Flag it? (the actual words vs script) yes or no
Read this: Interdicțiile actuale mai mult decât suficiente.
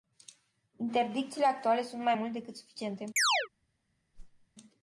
yes